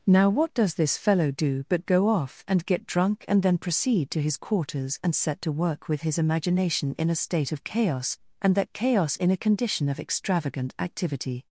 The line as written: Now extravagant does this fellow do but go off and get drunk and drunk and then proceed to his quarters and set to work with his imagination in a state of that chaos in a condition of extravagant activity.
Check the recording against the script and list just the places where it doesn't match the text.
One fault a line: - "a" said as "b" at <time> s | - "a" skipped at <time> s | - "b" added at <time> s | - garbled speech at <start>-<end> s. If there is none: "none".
- "extravagant" said as "what" at 0.3 s
- "drunk and" skipped at 3.4 s
- "chaos and" added at 7.6 s